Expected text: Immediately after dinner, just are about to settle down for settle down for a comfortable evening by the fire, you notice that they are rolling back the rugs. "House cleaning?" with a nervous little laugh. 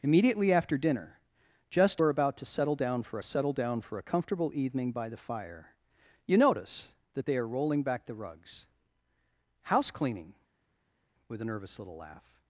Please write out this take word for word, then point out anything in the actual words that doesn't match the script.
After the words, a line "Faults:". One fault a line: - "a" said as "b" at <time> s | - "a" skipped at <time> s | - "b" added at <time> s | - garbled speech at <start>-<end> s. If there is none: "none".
Immediately after dinner, just are about to settle down for settle down for a comfortable evening by the fire, you notice that they are rolling back the rugs. "House cleaning?" with a nervous little laugh.
Faults:
none